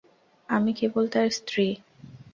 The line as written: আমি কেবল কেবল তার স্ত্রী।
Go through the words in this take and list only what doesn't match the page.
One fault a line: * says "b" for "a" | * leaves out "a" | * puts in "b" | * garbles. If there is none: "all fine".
* leaves out "কেবল"